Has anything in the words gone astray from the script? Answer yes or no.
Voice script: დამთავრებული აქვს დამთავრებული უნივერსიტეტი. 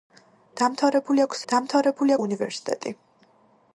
no